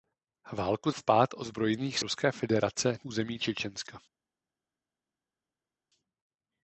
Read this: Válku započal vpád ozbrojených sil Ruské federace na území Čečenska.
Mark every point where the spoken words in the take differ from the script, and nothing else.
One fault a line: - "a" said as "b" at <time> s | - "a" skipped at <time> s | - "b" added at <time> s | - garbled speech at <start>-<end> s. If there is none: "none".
- "započal" skipped at 0.9 s
- "sil" skipped at 2.0 s
- "na" skipped at 3.0 s